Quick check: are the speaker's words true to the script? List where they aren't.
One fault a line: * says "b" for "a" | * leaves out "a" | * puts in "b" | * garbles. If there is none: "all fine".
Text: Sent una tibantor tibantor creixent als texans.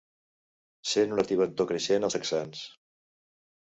* leaves out "tibantor"